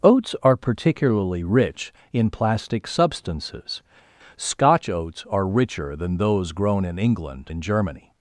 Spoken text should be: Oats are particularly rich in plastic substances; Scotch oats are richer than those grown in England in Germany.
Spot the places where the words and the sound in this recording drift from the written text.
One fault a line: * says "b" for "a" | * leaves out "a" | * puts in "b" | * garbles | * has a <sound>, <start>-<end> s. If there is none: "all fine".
all fine